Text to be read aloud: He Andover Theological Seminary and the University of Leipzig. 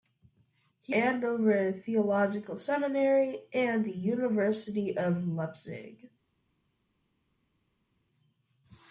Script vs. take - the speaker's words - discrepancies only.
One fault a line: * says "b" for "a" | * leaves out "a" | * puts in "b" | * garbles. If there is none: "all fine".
all fine